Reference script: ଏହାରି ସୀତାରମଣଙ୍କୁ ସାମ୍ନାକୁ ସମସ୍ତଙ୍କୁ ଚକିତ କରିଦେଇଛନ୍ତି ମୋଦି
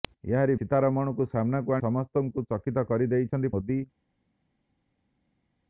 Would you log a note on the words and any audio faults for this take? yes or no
no